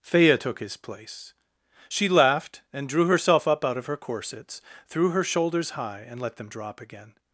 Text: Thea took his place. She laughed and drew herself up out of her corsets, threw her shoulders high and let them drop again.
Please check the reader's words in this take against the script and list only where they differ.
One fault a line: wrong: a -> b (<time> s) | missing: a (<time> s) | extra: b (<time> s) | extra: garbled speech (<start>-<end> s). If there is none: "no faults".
no faults